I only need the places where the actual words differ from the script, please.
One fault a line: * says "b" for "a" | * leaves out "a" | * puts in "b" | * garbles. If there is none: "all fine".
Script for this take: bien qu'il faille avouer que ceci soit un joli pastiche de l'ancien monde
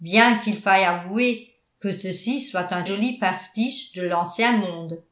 all fine